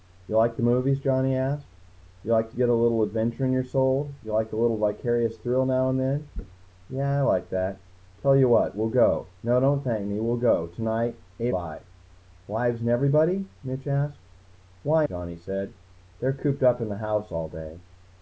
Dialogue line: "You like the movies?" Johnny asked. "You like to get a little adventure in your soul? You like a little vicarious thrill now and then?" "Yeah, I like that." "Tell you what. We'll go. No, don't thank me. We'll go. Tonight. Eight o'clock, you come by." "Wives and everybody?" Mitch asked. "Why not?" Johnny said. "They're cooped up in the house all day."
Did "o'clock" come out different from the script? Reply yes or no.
yes